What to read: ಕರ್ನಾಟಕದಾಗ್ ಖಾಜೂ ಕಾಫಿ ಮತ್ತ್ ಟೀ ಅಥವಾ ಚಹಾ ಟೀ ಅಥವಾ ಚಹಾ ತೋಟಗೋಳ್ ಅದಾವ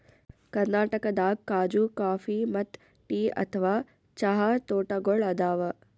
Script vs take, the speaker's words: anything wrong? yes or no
yes